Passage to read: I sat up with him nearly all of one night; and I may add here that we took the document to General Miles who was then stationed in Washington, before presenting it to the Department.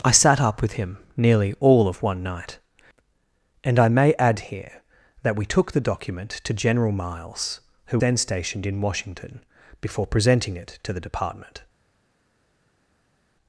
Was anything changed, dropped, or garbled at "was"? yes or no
yes